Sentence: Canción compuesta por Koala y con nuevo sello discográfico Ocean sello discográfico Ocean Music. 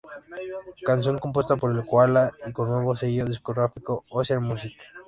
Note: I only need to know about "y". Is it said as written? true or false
true